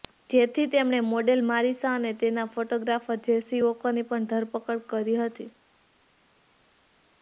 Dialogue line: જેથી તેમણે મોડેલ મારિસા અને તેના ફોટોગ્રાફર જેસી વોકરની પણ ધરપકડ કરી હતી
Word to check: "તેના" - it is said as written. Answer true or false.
true